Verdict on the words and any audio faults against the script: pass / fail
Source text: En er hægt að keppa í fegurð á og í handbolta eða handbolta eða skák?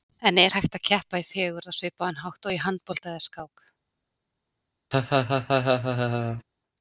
fail